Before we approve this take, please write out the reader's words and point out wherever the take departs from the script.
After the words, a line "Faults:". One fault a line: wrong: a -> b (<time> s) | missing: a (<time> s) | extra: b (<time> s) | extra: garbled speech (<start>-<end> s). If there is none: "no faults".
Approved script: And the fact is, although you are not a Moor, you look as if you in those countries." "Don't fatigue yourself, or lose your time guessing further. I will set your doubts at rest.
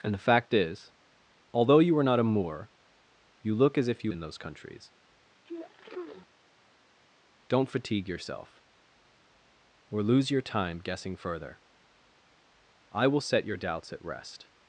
And the fact is, although you are not a Moor, you look as if you in those countries." "Don't fatigue yourself, or lose your time guessing further. I will set your doubts at rest.
Faults:
no faults